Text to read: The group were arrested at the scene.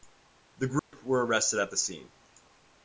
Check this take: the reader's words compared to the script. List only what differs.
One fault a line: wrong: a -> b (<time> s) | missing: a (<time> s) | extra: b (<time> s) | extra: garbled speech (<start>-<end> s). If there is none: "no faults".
no faults